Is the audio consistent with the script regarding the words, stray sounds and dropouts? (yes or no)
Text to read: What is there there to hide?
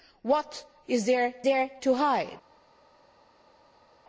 yes